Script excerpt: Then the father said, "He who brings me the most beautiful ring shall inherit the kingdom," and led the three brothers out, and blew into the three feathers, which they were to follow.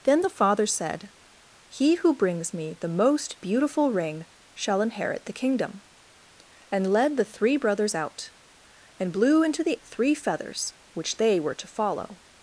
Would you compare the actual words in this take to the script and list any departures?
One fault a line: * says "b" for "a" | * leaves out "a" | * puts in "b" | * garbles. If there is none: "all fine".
all fine